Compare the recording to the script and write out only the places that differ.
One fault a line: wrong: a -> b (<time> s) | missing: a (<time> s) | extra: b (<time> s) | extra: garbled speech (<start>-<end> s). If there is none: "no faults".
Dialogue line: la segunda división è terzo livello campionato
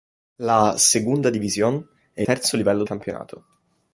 no faults